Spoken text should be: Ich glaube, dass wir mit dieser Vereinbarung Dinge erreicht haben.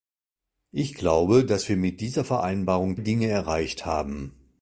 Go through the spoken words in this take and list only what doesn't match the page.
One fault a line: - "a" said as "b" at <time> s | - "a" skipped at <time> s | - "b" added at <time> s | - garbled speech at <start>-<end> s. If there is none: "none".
none